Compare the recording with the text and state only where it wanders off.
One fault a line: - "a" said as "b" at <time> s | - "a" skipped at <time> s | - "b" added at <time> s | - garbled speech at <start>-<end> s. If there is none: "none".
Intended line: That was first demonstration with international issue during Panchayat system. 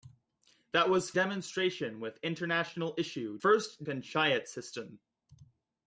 - "first" skipped at 1.1 s
- "during" said as "first" at 3.4 s